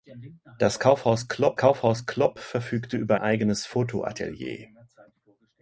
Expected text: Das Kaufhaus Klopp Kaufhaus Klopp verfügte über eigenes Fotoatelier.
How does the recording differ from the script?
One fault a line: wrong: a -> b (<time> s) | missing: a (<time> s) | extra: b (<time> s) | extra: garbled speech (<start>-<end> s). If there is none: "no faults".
no faults